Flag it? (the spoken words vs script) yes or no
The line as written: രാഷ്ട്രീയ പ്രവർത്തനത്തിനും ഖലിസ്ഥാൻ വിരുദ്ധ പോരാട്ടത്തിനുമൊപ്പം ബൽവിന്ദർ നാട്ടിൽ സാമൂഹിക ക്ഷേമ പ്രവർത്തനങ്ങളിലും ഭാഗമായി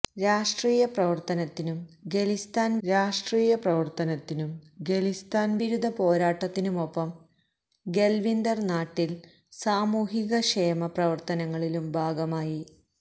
yes